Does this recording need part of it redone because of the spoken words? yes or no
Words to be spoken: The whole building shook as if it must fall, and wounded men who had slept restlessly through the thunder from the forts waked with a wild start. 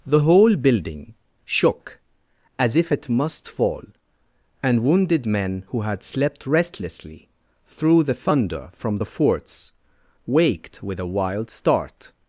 no